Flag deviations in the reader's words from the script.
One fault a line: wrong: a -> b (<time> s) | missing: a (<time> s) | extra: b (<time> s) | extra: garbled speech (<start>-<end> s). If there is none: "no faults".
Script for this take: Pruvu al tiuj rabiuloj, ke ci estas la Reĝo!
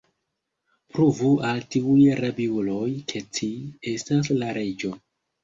no faults